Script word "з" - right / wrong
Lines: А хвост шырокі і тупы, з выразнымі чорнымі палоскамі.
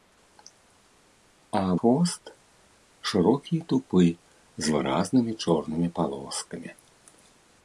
right